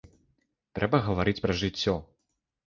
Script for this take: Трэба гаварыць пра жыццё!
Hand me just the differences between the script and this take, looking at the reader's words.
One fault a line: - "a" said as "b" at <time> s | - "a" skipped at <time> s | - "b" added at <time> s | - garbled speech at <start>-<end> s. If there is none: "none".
none